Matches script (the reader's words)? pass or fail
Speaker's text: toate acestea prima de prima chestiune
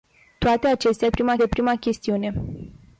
pass